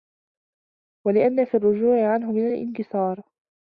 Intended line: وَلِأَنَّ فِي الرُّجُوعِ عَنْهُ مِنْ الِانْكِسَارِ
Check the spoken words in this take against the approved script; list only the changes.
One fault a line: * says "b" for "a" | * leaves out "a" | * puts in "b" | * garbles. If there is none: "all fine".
all fine